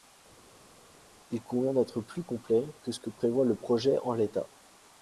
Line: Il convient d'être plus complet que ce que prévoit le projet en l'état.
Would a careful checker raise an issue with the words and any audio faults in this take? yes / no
no